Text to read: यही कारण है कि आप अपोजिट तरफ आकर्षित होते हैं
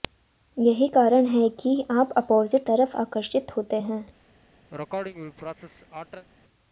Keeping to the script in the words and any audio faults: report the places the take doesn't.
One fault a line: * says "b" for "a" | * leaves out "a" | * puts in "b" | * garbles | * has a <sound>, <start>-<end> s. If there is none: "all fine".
* has a sneeze, 4.7-6.3 s